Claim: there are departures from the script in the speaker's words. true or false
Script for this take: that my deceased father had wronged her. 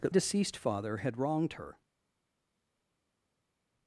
true